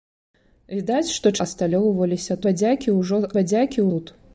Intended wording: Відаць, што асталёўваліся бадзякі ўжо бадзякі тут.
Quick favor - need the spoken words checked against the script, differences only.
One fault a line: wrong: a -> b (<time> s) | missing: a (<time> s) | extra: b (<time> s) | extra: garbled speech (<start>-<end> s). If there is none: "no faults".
no faults